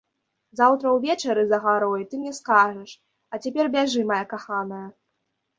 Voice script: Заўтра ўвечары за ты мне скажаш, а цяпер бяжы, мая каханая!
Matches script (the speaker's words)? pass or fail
fail